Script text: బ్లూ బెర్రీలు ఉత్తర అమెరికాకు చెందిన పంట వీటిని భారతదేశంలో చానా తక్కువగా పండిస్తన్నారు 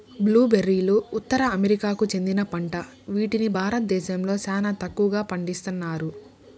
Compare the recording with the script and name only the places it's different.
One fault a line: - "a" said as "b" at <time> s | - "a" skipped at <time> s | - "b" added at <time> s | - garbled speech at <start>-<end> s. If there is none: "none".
none